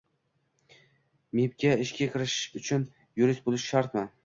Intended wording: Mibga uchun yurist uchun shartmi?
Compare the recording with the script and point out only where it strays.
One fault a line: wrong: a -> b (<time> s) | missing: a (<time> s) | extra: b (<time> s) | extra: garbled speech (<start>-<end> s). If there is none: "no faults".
extra: ishga kirish (1.9 s)
wrong: uchun -> bo'lish (3.5 s)